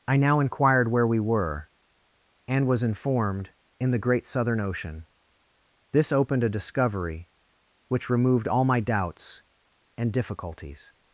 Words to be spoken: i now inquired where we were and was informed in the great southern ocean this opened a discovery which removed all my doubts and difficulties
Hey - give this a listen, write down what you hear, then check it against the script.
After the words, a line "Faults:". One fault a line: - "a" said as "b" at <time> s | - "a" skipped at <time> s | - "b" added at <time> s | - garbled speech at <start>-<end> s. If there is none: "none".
i now inquired where we were and was informed in the great southern ocean this opened a discovery which removed all my doubts and difficulties
Faults:
none